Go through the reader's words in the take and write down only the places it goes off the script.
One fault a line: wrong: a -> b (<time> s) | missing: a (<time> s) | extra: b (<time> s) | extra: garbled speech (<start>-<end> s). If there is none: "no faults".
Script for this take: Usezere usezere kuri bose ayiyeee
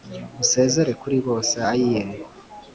missing: usezere (0.9 s)